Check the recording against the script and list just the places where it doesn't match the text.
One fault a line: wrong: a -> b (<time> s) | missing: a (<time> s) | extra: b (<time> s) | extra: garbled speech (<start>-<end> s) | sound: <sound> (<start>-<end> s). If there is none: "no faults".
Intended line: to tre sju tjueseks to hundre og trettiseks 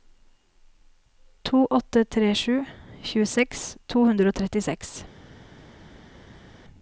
extra: åtte (1.7 s)